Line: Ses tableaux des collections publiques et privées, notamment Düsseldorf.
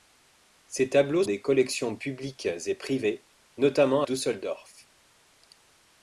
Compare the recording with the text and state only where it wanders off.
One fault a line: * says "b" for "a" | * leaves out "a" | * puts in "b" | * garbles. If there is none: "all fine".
all fine